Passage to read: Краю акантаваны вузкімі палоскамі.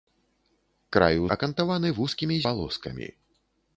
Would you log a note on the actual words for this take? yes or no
no